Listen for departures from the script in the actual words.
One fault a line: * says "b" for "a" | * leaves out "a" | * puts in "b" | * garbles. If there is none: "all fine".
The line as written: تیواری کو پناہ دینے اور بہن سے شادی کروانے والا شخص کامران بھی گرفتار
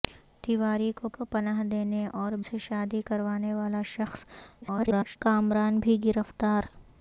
* puts in "کو"
* leaves out "بہن"
* garbles